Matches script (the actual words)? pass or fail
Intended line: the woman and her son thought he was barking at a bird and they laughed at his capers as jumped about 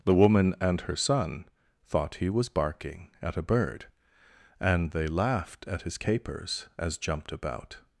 pass